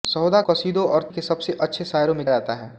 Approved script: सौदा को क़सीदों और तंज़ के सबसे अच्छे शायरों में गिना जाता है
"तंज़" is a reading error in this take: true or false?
true